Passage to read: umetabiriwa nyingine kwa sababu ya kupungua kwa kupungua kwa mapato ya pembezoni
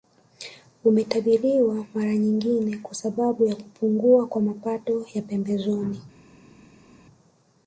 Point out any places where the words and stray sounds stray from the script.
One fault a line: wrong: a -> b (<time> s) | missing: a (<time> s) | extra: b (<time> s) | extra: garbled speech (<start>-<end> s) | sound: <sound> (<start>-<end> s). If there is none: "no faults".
extra: mara (1.9 s)
missing: kupungua kwa (4.4 s)